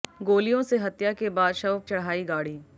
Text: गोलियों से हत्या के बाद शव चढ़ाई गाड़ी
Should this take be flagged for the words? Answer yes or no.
no